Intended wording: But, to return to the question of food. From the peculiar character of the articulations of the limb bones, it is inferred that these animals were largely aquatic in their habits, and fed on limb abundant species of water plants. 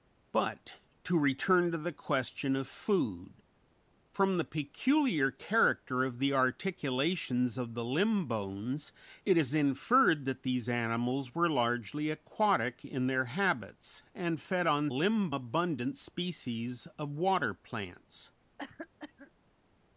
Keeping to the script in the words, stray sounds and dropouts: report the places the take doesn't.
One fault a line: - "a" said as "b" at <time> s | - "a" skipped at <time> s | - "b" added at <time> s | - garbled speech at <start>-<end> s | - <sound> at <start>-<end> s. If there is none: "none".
- cough at 18.6-19.3 s